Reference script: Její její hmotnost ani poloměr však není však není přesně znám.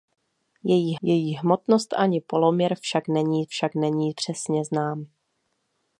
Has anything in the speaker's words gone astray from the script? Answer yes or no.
no